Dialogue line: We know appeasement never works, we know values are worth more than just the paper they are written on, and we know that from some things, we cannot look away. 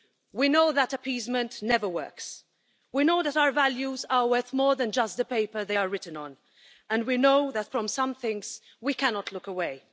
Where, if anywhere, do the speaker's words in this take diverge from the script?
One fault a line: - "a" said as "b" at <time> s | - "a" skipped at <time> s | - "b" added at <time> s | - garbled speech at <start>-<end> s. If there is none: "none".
- "that" added at 0.7 s
- "that our" added at 3.2 s